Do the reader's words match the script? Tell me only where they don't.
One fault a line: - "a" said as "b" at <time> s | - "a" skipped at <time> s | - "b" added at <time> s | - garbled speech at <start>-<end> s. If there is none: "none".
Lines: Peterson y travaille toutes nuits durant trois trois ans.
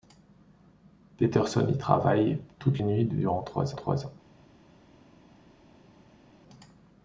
none